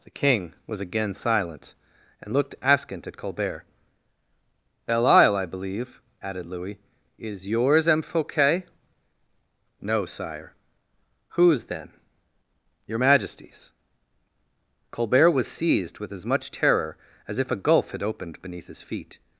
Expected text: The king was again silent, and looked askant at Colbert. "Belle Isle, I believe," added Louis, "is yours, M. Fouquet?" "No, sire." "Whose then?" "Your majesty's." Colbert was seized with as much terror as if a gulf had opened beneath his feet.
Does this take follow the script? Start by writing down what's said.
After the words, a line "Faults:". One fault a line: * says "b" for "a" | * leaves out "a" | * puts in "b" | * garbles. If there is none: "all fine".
The king was again silent, and looked askant at Colbert. "Belle Isle, I believe," added Louis, "is yours, M. Fouquet?" "No, sire." "Whose then?" "Your majesty's." Colbert was seized with as much terror as if a gulf had opened beneath his feet.
Faults:
all fine